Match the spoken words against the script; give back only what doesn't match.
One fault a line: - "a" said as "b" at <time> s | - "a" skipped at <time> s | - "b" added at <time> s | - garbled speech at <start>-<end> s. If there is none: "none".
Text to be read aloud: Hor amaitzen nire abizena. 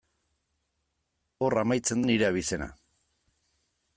none